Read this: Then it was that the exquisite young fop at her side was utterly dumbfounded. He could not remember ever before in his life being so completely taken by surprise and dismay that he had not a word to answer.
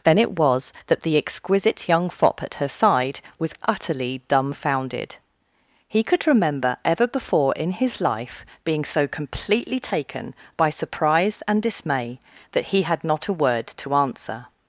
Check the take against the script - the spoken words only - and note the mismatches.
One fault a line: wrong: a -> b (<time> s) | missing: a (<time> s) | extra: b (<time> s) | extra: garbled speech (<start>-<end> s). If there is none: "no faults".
missing: not (6.2 s)